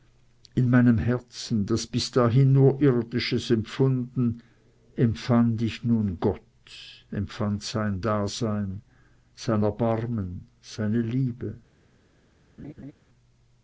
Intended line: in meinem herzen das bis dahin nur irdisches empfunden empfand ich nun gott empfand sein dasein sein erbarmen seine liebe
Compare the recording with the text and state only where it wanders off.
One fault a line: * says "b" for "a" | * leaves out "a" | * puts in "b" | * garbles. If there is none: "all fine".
all fine